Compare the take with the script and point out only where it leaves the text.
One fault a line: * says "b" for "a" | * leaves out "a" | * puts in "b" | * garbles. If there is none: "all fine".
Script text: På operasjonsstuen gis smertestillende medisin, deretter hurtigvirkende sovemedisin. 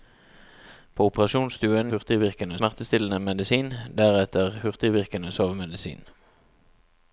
* says "hurtigvirkende" for "gis"